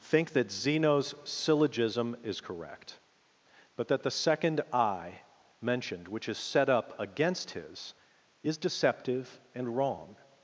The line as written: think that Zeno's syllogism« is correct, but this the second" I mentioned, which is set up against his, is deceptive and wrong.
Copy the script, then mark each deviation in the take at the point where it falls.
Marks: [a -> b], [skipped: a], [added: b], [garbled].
think that Zeno's syllogism« is correct, but [this -> that] the second" I mentioned, which is set up against his, is deceptive and wrong.